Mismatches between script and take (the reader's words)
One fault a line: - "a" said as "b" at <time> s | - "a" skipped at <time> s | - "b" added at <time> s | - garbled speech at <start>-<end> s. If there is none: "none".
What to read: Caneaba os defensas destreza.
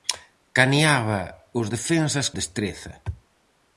none